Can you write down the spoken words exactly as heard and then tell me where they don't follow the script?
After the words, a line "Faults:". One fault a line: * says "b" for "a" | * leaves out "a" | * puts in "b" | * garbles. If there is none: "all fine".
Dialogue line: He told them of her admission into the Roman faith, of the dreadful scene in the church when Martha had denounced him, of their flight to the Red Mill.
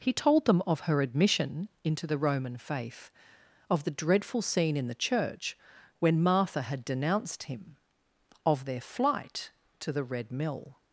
He told them of her admission into the Roman faith, of the dreadful scene in the church when Martha had denounced him, of their flight to the Red Mill.
Faults:
all fine